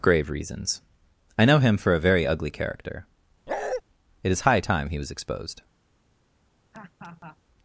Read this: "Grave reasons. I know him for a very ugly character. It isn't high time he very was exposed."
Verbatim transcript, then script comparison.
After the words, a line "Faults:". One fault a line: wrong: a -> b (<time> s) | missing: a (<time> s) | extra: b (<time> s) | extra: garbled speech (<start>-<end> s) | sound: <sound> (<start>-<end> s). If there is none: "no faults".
"Grave reasons. I know him for a very ugly character. It is high time he was exposed."
Faults:
sound: bark (3.5-3.8 s)
wrong: isn't -> is (4.3 s)
missing: very (5.0 s)
sound: laugh (6.7-7.4 s)